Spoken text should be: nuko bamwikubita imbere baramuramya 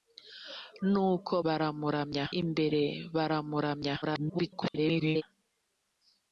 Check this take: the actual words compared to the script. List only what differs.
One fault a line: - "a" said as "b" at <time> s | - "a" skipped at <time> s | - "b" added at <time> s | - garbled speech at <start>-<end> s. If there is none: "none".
- "bamwikubita" said as "baramuramya" at 1.4 s
- garbled speech at 4.0-5.2 s